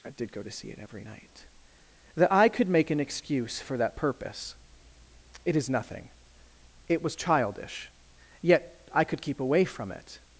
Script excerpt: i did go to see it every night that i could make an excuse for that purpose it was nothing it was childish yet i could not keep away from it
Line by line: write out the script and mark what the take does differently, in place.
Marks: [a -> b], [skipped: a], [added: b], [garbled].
i did go to see it every night that i could make an excuse for that purpose it [was -> is] nothing it was childish yet i could [skipped: not] keep away from it